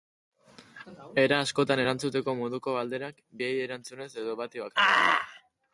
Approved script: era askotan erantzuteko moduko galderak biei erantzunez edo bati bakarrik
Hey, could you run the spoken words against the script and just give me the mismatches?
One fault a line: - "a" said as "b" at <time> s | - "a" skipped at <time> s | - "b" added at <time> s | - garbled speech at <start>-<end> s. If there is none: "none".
none